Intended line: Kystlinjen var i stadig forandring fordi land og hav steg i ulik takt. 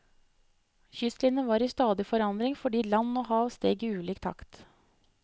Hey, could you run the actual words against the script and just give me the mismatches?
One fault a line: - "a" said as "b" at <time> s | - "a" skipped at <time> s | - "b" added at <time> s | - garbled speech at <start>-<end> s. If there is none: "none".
none